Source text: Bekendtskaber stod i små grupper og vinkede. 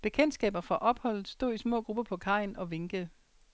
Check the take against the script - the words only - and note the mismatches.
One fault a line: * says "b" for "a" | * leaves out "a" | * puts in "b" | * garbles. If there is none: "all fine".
* puts in "fra opholdet"
* puts in "på kajen"